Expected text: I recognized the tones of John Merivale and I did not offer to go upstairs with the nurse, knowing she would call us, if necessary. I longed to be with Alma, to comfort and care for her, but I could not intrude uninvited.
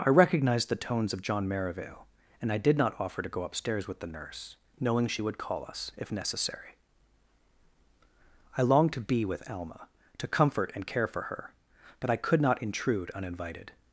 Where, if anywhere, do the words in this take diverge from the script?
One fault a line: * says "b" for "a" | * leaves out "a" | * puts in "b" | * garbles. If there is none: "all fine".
all fine